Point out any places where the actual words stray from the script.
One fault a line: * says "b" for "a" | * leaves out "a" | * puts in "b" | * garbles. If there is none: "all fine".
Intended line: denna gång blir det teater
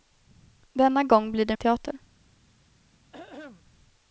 all fine